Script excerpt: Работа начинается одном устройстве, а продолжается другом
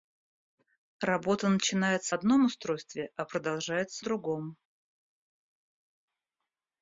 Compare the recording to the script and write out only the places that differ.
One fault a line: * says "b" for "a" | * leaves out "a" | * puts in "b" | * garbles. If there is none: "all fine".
all fine